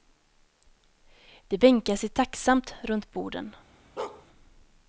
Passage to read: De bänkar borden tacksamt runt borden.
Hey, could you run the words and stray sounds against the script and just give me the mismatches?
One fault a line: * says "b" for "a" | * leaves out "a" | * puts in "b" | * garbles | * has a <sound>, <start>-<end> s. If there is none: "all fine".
* says "sig" for "borden"
* has a bark, 4.0-4.3 s